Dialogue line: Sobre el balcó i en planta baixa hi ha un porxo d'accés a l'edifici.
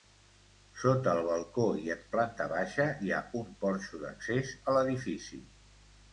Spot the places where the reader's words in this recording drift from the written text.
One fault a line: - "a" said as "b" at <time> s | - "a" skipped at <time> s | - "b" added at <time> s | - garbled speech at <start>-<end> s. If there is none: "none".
- "Sobre" said as "Sota" at 0.8 s